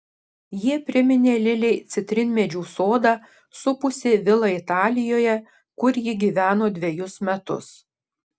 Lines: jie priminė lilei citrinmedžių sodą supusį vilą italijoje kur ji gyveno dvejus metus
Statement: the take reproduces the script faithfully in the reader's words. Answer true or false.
true